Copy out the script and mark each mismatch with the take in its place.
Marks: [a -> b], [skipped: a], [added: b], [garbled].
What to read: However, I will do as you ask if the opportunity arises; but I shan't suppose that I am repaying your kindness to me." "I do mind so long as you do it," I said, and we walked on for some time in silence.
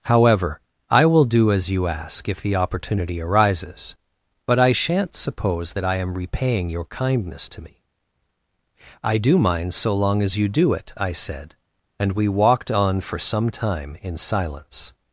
However, I will do as you ask if the opportunity arises; but I shan't suppose that I am repaying your kindness to me." "I do mind so long as you do it," I said, and we walked on for some time in silence.